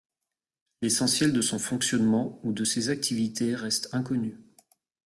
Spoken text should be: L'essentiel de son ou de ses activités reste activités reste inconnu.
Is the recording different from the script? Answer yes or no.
yes